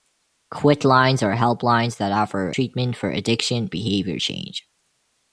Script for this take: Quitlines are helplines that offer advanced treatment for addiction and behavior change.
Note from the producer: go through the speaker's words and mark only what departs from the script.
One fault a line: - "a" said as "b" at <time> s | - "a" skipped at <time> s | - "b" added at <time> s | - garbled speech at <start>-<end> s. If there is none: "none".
- "advanced" skipped at 2.5 s
- "and" skipped at 3.7 s